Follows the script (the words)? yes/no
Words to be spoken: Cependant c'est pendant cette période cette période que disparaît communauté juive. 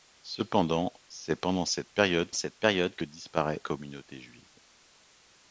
yes